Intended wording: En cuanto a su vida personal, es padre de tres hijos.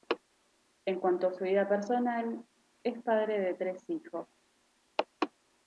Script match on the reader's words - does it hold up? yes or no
yes